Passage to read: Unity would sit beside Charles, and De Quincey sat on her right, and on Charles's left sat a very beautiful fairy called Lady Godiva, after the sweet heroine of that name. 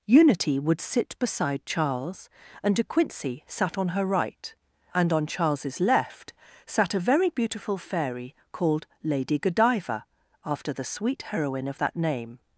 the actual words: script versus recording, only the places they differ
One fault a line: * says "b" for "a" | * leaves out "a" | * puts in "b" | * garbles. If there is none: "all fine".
all fine